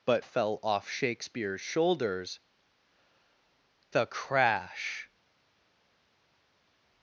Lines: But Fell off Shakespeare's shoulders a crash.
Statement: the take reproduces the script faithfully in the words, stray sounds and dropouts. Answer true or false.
true